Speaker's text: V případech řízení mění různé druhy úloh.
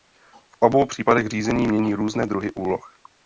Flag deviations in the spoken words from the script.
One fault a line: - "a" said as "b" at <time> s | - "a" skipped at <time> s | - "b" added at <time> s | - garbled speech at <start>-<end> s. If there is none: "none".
- "obou" added at 0.6 s